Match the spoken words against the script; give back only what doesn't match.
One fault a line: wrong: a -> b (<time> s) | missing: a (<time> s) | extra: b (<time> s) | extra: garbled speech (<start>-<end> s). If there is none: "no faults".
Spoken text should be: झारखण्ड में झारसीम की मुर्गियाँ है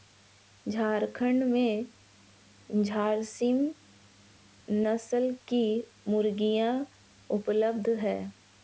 extra: नस्ल (4.7 s)
extra: उपलब्ध (7.3 s)